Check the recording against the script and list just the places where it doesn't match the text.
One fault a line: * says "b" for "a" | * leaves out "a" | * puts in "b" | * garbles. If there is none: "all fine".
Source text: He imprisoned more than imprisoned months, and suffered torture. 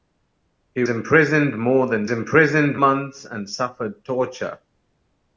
all fine